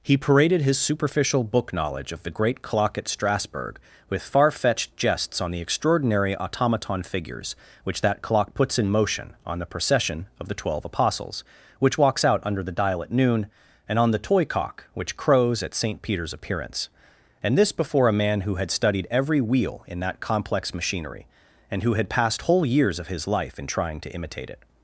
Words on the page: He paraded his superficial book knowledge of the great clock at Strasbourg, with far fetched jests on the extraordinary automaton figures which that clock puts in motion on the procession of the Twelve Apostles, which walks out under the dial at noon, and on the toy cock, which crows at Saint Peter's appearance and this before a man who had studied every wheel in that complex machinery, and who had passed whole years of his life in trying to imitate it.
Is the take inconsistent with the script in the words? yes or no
no